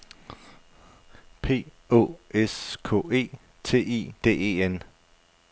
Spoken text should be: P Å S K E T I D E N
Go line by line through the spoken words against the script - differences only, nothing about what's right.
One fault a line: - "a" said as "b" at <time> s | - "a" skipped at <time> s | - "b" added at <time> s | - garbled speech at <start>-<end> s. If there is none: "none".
none